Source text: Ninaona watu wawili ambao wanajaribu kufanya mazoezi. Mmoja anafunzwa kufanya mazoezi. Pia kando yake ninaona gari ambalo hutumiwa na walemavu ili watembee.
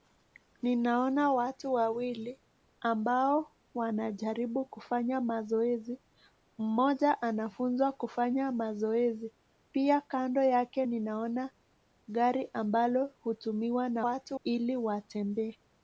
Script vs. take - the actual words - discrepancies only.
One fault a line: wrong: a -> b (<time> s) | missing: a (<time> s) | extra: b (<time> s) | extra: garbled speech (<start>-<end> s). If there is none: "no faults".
wrong: walemavu -> watu (14.0 s)